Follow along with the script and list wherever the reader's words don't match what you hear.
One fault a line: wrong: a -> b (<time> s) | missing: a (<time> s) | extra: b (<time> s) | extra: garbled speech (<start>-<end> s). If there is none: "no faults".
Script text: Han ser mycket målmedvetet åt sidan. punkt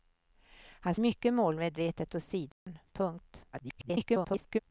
missing: ser (0.9 s)
extra: garbled speech (3.5-4.6 s)